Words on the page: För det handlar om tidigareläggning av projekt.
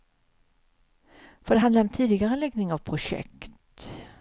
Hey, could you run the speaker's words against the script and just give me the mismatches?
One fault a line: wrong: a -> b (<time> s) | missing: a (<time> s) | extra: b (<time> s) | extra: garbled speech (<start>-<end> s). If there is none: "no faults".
no faults